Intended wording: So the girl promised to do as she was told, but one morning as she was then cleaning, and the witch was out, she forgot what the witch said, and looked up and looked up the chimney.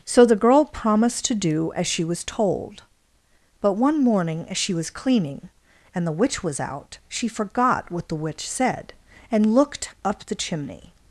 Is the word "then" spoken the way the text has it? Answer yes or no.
no